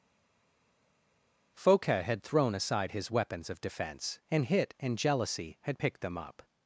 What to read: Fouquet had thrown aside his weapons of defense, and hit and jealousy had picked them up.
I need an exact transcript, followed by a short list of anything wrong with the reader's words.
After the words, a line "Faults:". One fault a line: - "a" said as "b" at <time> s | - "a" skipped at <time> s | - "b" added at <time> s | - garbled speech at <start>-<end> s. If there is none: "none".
Fouquet had thrown aside his weapons of defense, and hit and jealousy had picked them up.
Faults:
none